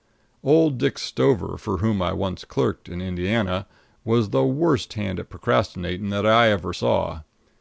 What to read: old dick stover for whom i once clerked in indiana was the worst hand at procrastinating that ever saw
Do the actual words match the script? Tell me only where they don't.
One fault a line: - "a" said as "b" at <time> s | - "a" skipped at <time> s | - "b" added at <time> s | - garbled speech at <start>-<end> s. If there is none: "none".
- "i" added at 6.2 s